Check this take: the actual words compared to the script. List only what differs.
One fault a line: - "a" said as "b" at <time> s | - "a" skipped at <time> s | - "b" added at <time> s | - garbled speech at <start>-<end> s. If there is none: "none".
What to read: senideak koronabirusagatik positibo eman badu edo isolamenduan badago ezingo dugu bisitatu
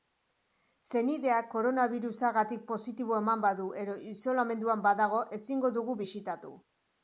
none